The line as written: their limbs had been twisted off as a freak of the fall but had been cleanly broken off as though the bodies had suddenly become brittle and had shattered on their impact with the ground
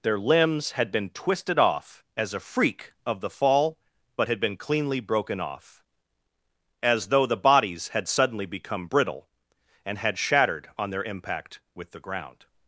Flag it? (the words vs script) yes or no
no